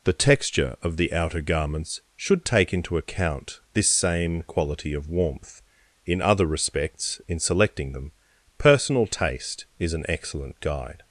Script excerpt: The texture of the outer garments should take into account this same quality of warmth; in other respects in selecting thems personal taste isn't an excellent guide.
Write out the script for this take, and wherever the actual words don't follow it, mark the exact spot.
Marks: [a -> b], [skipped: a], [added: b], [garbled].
The texture of the outer garments should take into account this same quality of warmth; in other respects in selecting [thems -> them] personal taste [isn't -> is] an excellent guide.